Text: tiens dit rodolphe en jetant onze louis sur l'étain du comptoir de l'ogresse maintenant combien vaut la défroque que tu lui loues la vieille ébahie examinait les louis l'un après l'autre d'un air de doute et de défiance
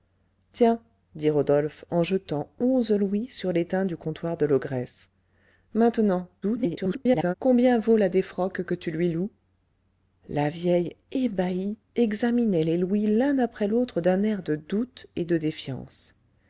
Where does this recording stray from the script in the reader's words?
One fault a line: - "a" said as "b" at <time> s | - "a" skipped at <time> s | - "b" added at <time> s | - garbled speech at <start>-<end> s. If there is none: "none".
- garbled speech at 6.4-7.3 s